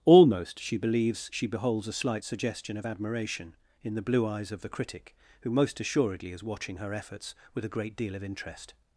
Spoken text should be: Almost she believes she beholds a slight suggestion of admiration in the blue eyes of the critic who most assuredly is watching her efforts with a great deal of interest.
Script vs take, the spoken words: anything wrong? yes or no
no